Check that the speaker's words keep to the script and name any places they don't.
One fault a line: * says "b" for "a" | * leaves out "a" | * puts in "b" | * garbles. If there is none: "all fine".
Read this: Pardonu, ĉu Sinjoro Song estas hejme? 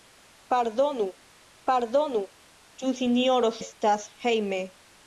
* puts in "pardonu"
* leaves out "Song"